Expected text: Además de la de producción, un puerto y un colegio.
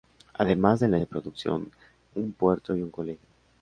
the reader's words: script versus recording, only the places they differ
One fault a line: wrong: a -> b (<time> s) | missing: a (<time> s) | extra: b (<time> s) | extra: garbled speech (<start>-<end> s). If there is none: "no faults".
no faults